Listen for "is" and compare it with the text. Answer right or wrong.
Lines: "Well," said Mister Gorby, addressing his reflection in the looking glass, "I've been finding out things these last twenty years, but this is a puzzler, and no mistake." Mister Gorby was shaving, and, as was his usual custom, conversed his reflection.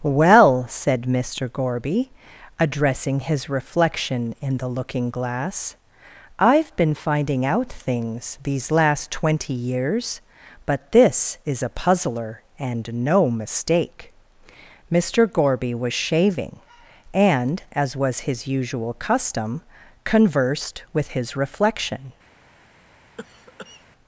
right